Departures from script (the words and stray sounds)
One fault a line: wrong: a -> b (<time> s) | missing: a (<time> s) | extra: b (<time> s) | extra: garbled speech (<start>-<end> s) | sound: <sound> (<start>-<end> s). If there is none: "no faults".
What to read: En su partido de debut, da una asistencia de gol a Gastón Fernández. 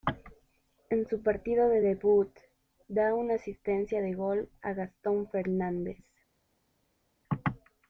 no faults